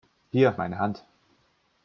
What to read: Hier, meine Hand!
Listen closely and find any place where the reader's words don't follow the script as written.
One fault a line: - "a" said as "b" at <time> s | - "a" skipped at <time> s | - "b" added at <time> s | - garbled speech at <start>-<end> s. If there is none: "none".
none